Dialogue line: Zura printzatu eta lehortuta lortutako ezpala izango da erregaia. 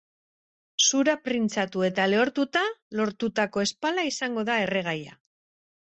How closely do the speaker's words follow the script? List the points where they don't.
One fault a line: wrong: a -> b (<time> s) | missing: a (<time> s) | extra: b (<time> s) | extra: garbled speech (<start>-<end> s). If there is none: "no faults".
no faults